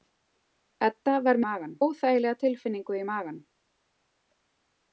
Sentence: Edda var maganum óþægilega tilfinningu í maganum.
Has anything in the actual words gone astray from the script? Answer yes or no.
no